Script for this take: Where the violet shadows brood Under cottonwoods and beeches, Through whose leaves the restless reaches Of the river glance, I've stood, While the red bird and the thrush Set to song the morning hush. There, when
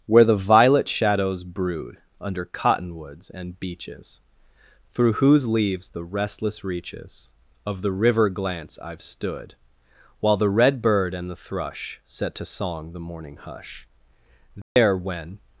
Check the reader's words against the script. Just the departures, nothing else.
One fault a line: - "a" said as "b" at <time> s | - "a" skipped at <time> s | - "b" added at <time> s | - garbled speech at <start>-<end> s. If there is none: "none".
none